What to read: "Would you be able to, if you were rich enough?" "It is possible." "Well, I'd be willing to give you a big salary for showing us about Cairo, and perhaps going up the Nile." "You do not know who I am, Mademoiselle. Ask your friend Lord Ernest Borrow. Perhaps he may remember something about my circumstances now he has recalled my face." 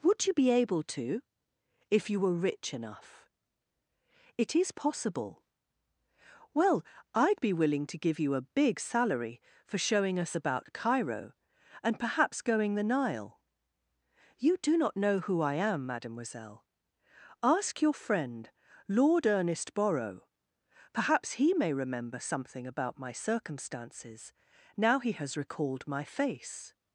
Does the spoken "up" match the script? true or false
false